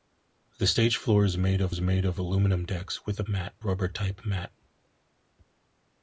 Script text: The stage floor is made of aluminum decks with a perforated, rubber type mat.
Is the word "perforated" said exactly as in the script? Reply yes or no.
no